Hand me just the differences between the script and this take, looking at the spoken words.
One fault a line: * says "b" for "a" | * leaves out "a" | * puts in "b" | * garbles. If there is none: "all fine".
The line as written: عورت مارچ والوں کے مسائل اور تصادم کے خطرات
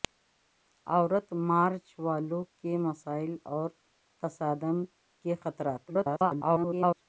* garbles